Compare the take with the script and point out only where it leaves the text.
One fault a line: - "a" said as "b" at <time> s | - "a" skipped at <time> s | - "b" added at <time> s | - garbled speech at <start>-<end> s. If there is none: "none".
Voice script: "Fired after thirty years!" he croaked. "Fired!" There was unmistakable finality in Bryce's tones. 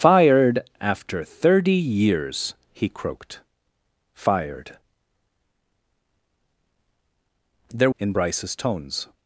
- "was unmistakable finality" skipped at 7.9 s